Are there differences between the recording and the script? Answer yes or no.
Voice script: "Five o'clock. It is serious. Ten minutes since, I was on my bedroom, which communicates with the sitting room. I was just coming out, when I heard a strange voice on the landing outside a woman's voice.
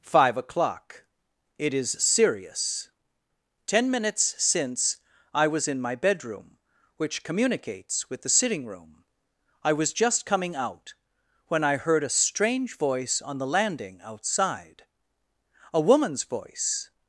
yes